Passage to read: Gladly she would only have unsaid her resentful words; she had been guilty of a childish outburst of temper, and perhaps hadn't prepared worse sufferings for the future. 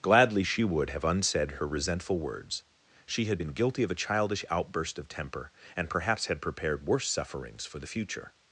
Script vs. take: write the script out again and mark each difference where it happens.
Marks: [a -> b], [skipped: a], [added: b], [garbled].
Gladly she would [skipped: only] have unsaid her resentful words; she had been guilty of a childish outburst of temper, and perhaps [hadn't -> had] prepared worse sufferings for the future.